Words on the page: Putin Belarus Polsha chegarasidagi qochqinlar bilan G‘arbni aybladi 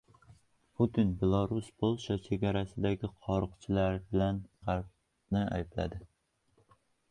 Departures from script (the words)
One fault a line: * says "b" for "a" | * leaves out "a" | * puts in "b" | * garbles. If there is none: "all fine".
all fine